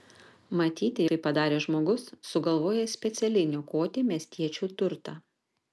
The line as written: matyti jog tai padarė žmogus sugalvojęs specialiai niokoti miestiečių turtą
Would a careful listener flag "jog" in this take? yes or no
yes